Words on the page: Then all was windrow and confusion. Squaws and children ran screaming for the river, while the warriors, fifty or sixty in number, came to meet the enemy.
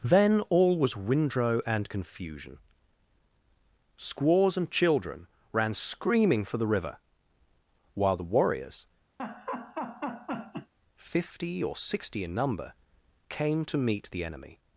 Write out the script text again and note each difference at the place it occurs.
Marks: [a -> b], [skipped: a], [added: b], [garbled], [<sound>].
Then all was windrow and confusion. Squaws and children ran screaming for the river, while the warriors, [laugh] fifty or sixty in number, came to meet the enemy.